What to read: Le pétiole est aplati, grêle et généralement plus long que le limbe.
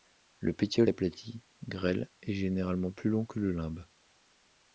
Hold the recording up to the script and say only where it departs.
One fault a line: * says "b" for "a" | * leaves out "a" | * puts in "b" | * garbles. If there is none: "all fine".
* leaves out "est"